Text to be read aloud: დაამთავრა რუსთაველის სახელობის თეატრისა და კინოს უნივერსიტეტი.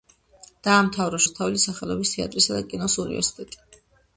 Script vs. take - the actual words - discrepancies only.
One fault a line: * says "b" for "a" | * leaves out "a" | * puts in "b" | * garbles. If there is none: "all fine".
all fine